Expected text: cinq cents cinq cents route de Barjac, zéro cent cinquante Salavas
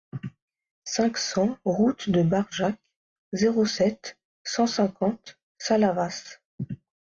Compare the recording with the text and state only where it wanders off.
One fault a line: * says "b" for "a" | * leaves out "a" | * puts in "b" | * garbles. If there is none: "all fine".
* leaves out "cinq cents"
* puts in "sept"